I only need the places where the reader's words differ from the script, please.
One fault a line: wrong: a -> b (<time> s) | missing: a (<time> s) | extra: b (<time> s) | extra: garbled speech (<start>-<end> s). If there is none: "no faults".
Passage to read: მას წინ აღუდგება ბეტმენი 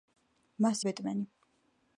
missing: წინ აღუდგება (0.8 s)